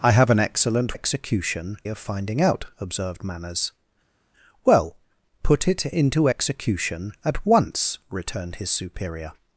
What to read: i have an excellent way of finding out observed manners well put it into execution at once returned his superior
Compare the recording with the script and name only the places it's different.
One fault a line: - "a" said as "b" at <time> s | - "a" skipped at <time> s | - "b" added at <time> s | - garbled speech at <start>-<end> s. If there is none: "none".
- "way" said as "execution" at 0.9 s